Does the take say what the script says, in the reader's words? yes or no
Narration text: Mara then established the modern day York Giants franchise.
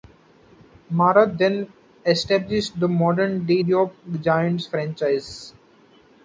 yes